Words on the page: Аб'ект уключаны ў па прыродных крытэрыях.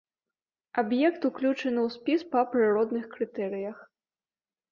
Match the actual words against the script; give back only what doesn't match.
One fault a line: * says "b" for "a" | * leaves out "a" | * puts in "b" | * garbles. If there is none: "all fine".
* puts in "спіс"